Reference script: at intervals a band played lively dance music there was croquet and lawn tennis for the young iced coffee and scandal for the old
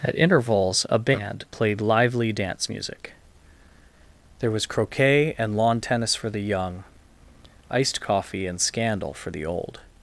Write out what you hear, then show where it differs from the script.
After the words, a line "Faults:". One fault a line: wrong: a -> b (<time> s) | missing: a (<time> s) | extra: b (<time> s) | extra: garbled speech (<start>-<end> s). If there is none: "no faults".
at intervals a band played lively dance music there was croquet and lawn tennis for the young iced coffee and scandal for the old
Faults:
no faults